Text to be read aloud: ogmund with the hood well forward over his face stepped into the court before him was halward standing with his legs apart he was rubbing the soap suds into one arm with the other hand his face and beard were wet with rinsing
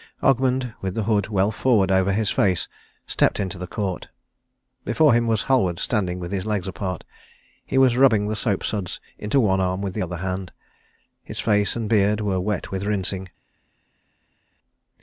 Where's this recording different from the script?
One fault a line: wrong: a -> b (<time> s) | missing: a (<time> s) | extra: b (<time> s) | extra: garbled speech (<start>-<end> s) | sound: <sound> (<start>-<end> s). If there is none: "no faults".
no faults